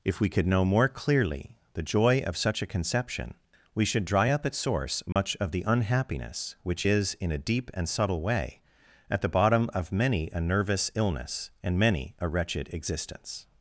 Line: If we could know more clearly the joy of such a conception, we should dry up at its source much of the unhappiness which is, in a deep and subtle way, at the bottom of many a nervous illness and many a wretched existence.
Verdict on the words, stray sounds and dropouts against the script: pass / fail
fail